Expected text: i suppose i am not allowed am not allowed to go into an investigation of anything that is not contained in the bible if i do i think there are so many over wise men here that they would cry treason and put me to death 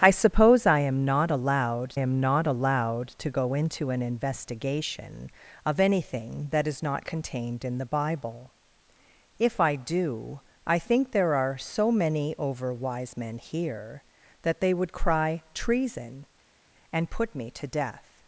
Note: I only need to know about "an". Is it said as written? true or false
true